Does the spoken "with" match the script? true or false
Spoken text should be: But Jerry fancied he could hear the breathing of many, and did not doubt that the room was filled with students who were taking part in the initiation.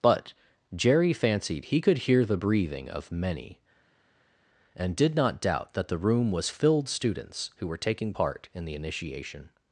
false